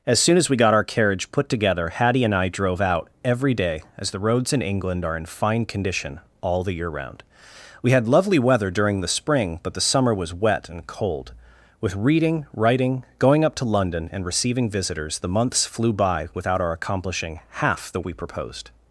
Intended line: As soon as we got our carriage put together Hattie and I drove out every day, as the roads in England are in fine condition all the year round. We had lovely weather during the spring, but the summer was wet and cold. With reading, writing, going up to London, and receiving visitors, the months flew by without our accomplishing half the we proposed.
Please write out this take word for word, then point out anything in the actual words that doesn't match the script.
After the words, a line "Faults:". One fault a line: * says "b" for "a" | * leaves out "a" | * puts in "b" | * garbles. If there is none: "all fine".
As soon as we got our carriage put together Hattie and I drove out every day, as the roads in England are in fine condition all the year round. We had lovely weather during the spring, but the summer was wet and cold. With reading, writing, going up to London, and receiving visitors, the months flew by without our accomplishing half the we proposed.
Faults:
all fine